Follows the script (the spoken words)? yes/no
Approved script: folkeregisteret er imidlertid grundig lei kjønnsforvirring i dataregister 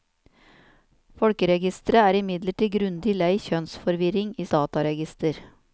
yes